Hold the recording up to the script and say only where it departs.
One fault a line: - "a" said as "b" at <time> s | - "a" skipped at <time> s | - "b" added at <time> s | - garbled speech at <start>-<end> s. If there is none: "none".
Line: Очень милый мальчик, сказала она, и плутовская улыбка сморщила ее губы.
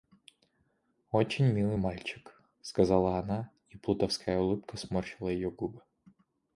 none